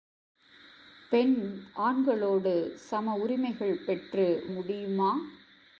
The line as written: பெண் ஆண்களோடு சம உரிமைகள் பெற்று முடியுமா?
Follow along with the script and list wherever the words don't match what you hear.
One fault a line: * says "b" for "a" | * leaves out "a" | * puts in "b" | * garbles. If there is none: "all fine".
all fine